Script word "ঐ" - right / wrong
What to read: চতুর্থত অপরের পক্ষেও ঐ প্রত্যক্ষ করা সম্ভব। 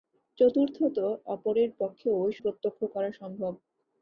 right